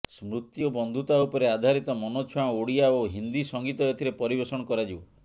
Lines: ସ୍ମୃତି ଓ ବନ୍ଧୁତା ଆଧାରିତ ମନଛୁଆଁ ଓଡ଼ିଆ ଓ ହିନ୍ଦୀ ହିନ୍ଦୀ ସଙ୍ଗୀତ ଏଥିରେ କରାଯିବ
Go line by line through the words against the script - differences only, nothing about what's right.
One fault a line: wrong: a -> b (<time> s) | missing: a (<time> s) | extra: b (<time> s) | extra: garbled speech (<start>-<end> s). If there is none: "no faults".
extra: ଉପରେ (1.2 s)
missing: ହିନ୍ଦୀ (3.4 s)
extra: ପରିବେଷଣ (4.2 s)